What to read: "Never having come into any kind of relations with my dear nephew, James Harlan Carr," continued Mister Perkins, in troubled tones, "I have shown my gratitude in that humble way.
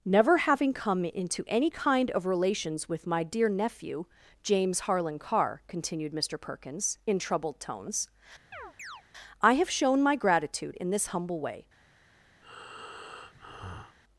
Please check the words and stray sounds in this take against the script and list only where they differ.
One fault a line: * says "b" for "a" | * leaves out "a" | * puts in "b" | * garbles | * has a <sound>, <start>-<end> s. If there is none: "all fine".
* has a chirp, 8.5-9.0 s
* says "this" for "that"
* has a breath, 12.4-14.0 s